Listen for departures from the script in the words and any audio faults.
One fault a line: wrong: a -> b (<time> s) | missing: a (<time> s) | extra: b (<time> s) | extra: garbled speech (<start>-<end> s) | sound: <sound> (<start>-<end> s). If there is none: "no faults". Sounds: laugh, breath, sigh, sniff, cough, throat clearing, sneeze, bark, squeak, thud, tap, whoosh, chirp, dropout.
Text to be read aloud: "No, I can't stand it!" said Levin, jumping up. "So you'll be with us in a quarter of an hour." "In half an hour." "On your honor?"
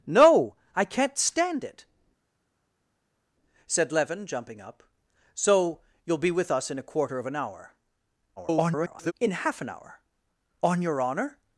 extra: garbled speech (8.4-9.1 s)